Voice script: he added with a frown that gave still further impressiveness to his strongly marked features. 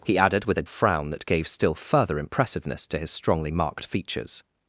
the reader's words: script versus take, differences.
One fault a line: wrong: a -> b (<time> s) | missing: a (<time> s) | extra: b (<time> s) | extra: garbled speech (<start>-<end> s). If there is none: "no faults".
no faults